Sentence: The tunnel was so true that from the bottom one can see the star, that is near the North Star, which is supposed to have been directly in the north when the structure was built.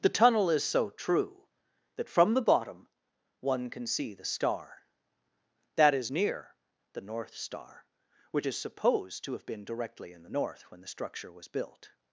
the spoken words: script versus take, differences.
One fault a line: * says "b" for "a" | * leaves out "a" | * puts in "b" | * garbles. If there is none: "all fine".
* says "is" for "was"